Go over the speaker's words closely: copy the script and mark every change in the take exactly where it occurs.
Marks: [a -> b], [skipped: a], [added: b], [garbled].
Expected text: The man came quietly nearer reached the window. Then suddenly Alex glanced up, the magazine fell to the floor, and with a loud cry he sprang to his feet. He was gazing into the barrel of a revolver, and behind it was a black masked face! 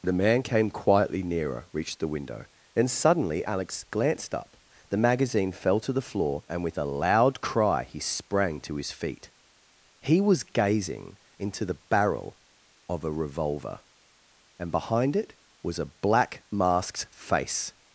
The man came quietly nearer reached the window. Then suddenly Alex glanced up, the magazine fell to the floor, and with a loud cry he sprang to his feet. He was gazing into the barrel of a revolver, and behind it was a black masked face!